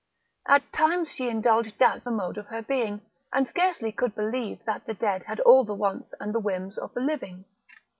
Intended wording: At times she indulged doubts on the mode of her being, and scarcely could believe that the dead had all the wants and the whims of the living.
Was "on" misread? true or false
true